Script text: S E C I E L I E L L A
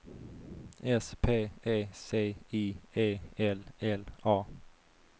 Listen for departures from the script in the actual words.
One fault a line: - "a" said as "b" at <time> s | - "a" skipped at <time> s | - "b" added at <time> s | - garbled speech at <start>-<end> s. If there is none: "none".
- "P" added at 1.2 s
- "I E L" skipped at 3.6 s